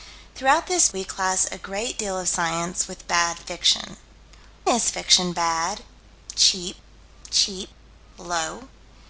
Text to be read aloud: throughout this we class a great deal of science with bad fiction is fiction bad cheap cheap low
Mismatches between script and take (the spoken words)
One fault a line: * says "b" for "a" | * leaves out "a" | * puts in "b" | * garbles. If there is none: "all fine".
all fine